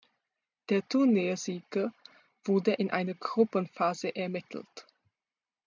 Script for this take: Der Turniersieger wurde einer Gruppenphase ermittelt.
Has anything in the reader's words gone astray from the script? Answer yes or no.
yes